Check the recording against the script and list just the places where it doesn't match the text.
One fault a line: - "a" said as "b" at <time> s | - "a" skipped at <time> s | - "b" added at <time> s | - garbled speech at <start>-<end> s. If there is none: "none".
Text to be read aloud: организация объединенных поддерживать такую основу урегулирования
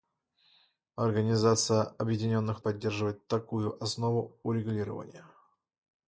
none